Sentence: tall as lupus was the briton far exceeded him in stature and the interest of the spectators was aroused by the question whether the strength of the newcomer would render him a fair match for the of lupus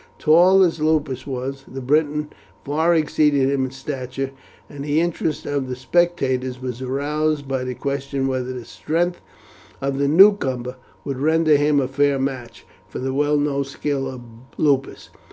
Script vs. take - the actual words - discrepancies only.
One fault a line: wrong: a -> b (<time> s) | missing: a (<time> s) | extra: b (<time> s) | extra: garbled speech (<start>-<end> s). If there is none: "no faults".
extra: well known skill (13.1 s)